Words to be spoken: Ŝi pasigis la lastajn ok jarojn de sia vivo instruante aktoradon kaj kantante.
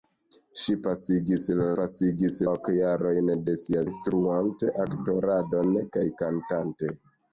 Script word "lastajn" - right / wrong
wrong